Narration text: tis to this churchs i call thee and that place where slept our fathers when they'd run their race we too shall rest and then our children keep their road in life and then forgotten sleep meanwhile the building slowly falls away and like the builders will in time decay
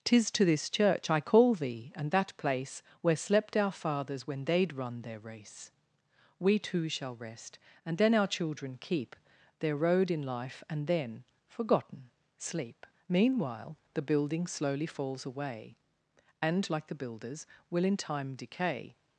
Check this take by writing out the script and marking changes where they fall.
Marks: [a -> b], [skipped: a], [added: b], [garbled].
tis to this [churchs -> church] i call thee and that place where slept our fathers when they'd run their race we too shall rest and then our children keep their road in life and then forgotten sleep meanwhile the building slowly falls away and like the builders will in time decay